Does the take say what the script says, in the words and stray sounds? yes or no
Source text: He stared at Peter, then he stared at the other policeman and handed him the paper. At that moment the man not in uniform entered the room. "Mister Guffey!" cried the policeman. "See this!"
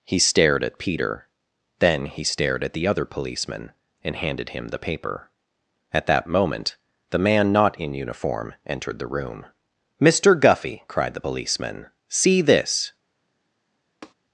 no